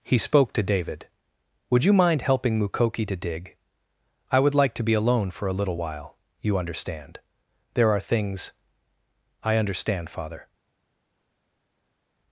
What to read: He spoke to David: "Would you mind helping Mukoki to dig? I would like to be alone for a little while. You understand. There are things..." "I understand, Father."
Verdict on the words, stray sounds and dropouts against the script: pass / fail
pass